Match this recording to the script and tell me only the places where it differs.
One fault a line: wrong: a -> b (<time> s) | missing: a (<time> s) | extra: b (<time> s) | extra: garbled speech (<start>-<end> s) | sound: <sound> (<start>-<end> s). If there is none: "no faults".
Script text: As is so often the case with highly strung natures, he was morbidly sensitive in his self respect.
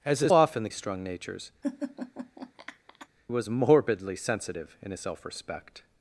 missing: so (0.3 s)
missing: case with highly (0.7 s)
missing: he (1.5 s)
sound: laugh (1.6-3.1 s)